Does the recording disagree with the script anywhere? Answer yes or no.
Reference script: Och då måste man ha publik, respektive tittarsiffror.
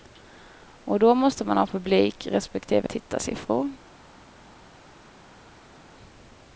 no